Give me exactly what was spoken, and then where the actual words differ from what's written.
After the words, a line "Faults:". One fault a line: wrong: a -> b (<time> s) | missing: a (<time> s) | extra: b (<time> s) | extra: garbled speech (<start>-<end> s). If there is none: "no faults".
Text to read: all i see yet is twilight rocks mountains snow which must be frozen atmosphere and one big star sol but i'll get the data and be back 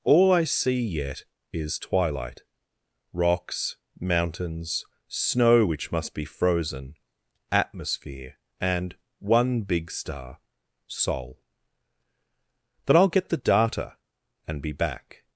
all i see yet is twilight rocks mountains snow which must be frozen atmosphere and one big star sol then i'll get the data and be back
Faults:
wrong: but -> then (12.8 s)